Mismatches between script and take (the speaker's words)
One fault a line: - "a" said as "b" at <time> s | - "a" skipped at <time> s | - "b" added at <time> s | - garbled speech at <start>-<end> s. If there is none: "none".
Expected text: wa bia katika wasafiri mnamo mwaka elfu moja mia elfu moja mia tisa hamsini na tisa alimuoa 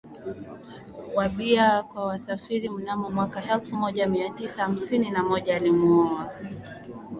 - "katika" said as "kwa" at 1.8 s
- "elfu moja mia" skipped at 4.3 s
- "tisa" said as "moja" at 5.2 s